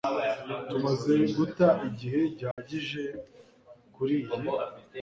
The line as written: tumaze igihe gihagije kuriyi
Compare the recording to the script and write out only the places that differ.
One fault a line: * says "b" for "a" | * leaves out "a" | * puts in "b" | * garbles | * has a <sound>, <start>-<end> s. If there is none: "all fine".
* puts in "guta"
* has a dropout, 2.5-2.6 s